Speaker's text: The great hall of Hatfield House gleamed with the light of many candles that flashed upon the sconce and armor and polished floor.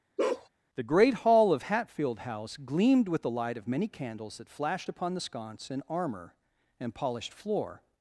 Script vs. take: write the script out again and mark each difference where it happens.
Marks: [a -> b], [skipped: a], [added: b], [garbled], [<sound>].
[bark] The great hall of Hatfield House gleamed with the light of many candles that flashed upon the sconce and armor and polished floor.